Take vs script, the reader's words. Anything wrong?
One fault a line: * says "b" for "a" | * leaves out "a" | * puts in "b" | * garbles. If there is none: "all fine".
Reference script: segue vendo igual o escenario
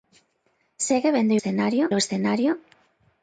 * says "escenario" for "igual"